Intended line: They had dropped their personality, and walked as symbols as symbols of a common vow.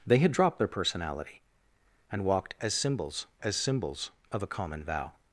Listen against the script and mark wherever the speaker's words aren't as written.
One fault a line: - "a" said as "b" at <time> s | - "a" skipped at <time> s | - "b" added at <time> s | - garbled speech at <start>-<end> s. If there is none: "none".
none